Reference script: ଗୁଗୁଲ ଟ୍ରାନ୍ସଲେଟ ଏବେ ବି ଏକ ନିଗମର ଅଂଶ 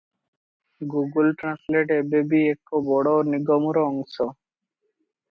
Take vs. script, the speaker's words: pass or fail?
fail